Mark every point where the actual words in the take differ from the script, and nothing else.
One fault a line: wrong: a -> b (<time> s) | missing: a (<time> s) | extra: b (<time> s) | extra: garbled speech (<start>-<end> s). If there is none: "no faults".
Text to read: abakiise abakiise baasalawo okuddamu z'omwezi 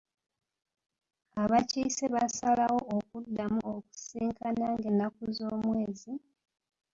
missing: abakiise (2.0 s)
extra: okusisinkana ng'ennaku (3.7 s)